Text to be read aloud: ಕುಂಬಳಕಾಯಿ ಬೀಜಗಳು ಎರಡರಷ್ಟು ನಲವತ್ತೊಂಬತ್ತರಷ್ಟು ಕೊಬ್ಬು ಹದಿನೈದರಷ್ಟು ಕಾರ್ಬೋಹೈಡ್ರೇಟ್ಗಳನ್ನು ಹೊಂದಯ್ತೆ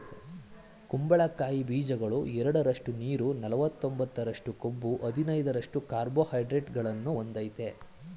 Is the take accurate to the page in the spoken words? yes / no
no